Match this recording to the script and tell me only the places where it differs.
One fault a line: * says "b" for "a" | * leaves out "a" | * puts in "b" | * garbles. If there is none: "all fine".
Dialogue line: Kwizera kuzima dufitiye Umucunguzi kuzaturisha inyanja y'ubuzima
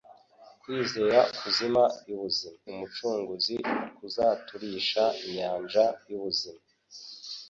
* says "y'ubuzima" for "dufitiye"